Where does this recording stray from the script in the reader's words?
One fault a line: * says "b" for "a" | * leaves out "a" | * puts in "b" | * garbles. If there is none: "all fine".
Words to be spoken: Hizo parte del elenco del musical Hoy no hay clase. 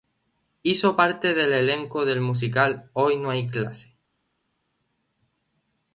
all fine